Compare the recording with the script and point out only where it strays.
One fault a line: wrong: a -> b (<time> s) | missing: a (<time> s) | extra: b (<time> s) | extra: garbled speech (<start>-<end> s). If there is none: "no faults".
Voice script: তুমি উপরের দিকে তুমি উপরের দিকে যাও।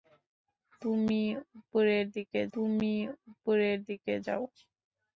no faults